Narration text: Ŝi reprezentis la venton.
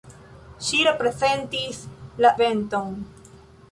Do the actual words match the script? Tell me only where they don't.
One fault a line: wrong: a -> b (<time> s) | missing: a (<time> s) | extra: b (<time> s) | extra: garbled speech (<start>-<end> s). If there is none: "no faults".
no faults